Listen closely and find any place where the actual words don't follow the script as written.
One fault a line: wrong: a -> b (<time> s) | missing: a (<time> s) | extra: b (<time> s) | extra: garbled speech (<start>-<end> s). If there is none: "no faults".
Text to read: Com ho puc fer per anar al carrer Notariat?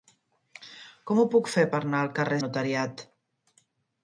no faults